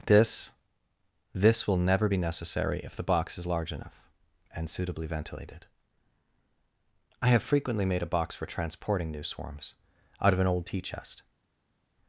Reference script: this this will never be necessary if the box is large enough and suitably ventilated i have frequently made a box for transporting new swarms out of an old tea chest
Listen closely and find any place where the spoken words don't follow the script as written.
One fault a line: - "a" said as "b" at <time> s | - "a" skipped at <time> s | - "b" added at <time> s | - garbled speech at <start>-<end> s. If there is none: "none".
none